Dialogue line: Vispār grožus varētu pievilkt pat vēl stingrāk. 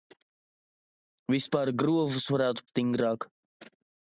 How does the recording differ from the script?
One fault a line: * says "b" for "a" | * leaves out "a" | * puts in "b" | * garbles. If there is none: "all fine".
* leaves out "pievilkt pat vēl"